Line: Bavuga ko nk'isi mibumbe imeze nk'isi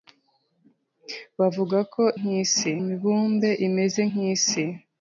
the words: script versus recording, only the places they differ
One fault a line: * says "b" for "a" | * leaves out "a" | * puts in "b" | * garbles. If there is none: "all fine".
all fine